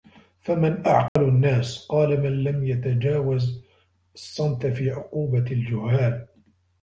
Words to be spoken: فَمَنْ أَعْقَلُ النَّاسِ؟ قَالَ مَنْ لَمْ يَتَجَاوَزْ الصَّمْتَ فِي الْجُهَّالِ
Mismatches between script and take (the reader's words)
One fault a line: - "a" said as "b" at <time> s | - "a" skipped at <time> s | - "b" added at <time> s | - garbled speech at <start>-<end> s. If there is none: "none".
- "عُقُوبَةِ" added at 4.9 s